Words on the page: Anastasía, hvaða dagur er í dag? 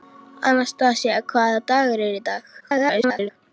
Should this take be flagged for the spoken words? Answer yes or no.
yes